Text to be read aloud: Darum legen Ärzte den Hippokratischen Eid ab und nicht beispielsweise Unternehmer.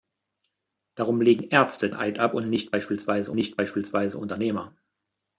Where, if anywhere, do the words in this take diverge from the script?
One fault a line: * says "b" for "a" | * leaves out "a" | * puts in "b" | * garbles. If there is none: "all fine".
* leaves out "den Hippokratischen"
* puts in "nicht beispielsweise"